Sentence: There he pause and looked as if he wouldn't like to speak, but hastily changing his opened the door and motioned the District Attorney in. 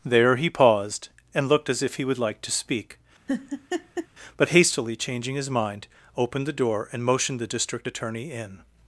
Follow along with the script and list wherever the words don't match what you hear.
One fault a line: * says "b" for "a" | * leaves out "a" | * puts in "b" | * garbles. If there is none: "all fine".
* says "paused" for "pause"
* says "would" for "wouldn't"
* puts in "mind"